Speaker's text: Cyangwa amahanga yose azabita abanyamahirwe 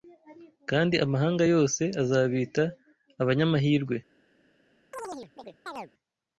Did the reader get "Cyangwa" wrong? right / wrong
wrong